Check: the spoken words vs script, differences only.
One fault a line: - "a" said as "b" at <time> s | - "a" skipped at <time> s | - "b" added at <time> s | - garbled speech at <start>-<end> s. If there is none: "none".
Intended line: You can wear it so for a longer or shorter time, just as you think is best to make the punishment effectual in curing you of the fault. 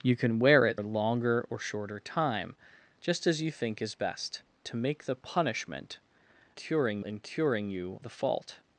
- "so for" skipped at 0.8 s
- "effectual" said as "curing" at 6.5 s
- "of" skipped at 8.0 s